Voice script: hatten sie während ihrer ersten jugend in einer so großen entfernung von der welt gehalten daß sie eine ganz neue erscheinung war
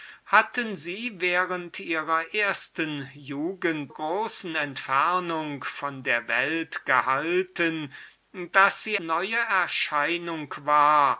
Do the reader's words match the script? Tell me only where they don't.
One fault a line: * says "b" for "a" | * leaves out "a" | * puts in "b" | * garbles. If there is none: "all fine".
* leaves out "in einer so"
* leaves out "eine ganz"